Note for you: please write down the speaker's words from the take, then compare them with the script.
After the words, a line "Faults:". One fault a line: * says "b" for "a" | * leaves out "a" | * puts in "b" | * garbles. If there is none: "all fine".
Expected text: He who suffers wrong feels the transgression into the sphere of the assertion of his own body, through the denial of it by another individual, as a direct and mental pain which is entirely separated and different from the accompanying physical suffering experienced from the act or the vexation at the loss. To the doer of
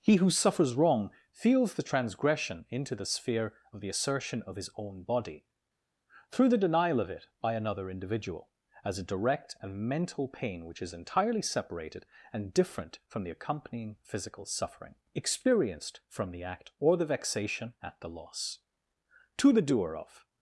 He who suffers wrong feels the transgression into the sphere of the assertion of his own body, through the denial of it by another individual, as a direct and mental pain which is entirely separated and different from the accompanying physical suffering experienced from the act or the vexation at the loss. To the doer of
Faults:
all fine